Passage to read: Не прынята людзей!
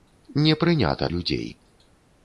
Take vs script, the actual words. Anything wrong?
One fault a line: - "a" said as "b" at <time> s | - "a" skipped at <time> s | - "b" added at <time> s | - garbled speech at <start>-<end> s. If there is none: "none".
none